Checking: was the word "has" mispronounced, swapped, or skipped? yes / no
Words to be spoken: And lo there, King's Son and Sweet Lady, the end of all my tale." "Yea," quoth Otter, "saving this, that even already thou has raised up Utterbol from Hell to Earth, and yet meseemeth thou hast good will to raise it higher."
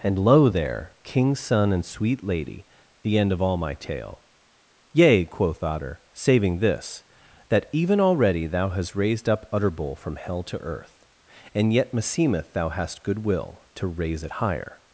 yes